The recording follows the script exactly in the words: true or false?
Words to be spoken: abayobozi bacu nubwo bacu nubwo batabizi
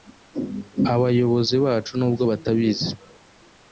false